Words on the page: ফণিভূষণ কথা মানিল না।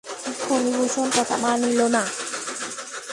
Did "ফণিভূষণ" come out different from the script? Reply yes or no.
no